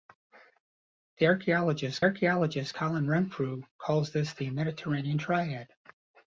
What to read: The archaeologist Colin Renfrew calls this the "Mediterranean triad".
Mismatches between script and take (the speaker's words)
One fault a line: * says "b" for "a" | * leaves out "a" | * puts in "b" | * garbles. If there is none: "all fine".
* puts in "archaeologist"